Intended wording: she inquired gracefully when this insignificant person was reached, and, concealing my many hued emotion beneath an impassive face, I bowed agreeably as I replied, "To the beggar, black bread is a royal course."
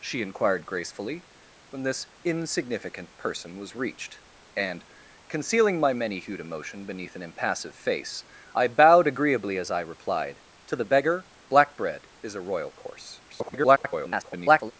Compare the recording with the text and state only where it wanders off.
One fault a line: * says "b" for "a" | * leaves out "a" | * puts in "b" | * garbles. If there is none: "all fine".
* garbles